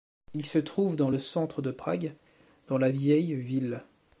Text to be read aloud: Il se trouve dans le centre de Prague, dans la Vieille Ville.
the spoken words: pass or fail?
pass